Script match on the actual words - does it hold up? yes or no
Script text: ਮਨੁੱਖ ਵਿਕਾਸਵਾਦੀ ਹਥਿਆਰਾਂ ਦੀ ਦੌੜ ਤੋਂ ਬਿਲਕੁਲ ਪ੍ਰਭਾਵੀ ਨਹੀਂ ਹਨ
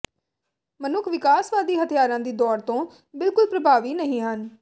yes